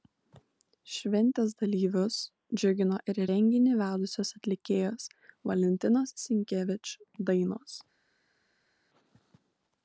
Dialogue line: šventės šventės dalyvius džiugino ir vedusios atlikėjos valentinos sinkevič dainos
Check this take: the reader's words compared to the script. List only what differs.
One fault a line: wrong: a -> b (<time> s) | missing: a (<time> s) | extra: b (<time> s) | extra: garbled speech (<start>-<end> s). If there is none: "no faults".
missing: šventės (1.5 s)
extra: renginį (3.3 s)